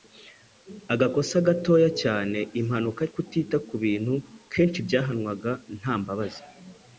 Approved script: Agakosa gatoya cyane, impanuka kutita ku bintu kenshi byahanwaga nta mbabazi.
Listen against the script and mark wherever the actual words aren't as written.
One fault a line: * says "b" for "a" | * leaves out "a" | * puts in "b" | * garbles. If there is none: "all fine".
all fine